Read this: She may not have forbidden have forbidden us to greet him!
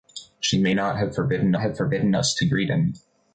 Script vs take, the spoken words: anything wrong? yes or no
no